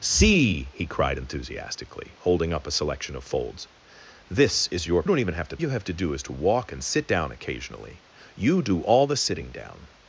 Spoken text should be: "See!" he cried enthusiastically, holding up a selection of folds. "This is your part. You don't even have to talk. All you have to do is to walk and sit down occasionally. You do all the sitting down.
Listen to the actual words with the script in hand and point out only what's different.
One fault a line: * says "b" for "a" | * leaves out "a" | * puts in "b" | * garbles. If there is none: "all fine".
* leaves out "part You"
* leaves out "talk All"